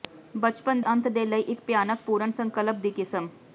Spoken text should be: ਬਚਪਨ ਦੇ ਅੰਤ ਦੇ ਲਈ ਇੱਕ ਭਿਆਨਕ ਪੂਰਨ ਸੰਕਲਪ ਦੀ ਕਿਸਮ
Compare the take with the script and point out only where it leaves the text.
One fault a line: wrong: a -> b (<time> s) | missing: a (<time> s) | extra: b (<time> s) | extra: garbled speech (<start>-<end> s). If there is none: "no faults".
missing: ਦੇ (0.8 s)